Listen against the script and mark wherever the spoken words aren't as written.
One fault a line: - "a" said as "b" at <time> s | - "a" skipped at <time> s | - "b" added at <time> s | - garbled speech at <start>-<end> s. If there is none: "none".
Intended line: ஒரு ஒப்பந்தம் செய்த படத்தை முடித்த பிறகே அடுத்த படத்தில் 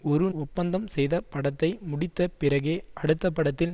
none